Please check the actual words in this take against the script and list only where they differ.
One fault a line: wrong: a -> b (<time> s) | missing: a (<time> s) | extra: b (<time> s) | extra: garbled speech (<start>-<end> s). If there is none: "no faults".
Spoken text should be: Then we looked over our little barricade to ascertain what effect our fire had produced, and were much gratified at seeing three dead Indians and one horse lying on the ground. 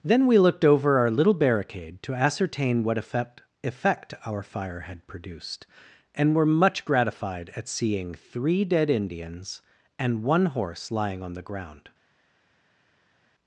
extra: effect (3.6 s)